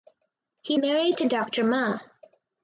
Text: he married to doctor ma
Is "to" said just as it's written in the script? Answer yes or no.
yes